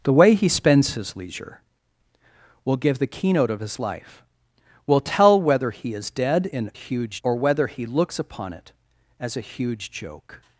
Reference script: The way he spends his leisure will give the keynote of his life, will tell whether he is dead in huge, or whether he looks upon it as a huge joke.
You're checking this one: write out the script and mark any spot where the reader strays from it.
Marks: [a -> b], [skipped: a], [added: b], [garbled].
The way he spends his leisure will give the keynote of his life, will tell whether he is dead in huge, or whether he looks upon it as a huge joke.